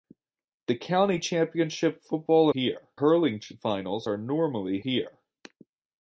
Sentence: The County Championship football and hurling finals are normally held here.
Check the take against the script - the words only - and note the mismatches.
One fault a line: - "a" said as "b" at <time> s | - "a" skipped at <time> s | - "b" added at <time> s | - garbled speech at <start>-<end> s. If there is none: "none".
- "and" said as "here" at 2.5 s
- "held" skipped at 4.8 s